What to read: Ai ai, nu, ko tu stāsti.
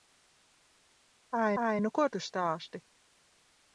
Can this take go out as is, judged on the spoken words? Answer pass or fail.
pass